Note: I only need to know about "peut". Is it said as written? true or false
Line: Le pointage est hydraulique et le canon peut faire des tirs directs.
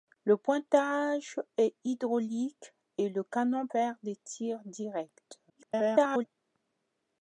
false